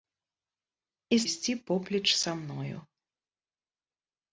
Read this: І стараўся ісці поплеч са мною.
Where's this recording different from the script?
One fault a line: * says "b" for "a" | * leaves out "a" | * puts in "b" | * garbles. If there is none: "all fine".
* leaves out "стараўся"